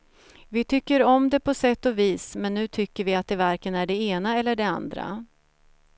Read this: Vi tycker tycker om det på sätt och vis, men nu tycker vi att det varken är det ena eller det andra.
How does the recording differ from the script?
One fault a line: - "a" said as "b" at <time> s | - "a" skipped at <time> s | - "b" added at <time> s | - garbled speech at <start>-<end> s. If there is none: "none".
- "tycker" skipped at 1.0 s